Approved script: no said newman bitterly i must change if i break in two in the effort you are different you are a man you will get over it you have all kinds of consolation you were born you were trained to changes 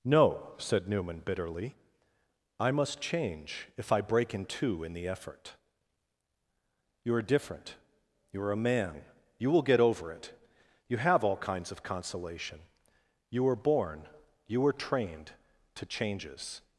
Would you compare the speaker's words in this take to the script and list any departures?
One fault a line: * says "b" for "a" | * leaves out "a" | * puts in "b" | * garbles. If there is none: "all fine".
all fine